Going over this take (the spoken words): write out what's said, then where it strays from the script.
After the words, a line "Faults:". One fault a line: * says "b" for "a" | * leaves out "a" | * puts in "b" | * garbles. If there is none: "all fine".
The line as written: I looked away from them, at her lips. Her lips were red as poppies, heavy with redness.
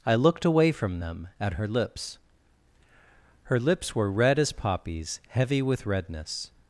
I looked away from them, at her lips. Her lips were red as poppies, heavy with redness.
Faults:
all fine